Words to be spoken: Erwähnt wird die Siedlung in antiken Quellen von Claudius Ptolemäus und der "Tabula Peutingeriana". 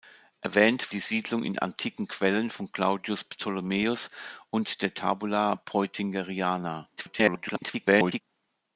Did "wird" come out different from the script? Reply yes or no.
yes